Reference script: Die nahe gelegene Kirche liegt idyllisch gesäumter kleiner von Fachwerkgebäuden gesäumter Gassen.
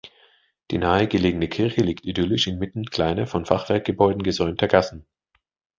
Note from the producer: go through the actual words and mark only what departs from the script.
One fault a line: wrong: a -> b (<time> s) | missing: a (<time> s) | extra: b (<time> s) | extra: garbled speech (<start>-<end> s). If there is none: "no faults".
wrong: gesäumter -> inmitten (2.5 s)